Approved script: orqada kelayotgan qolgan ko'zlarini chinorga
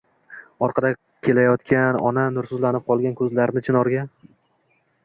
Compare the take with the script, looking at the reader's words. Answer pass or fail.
fail